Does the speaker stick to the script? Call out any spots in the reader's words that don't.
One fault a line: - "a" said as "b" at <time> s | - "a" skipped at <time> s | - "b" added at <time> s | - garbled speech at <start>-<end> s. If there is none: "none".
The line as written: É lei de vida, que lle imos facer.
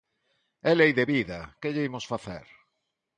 none